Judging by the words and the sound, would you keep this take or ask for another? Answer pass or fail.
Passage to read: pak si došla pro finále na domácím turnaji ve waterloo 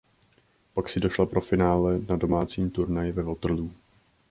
pass